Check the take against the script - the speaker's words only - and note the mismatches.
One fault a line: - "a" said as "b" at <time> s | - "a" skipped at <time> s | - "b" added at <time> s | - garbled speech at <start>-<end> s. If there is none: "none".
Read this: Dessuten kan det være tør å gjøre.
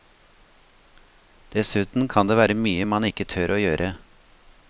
- "mye man ikke" added at 2.5 s